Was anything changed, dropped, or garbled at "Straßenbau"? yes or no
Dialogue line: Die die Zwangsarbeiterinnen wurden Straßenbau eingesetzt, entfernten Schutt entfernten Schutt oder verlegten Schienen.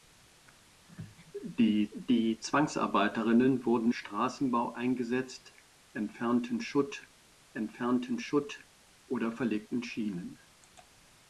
no